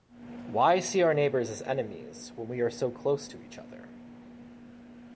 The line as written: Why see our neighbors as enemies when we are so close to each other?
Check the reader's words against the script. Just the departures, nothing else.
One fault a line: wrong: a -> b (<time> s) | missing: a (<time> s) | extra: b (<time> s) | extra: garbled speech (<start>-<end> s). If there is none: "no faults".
no faults